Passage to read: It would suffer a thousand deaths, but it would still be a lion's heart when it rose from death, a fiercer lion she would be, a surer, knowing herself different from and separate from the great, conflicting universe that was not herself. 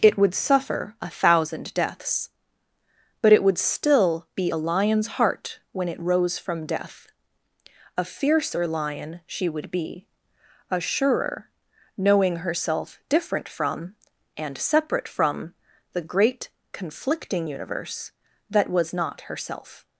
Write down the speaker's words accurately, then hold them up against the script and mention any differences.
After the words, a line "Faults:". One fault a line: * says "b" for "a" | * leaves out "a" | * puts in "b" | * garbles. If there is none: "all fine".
It would suffer a thousand deaths, but it would still be a lion's heart when it rose from death, a fiercer lion she would be, a surer, knowing herself different from and separate from the great, conflicting universe that was not herself.
Faults:
all fine